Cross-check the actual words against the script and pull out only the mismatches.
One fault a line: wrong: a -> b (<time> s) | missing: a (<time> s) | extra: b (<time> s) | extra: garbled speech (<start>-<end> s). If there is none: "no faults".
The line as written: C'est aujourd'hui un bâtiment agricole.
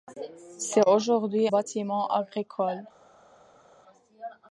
missing: un (1.5 s)